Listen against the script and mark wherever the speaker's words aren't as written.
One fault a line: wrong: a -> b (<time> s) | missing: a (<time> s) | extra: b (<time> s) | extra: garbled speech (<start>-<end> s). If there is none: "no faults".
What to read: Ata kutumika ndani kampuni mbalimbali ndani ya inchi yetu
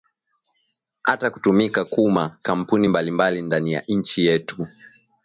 wrong: ndani -> kuma (1.8 s)